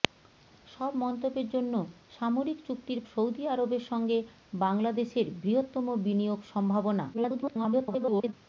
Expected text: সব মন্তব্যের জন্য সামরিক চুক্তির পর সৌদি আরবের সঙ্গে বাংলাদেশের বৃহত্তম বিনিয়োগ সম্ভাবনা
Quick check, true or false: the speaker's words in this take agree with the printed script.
false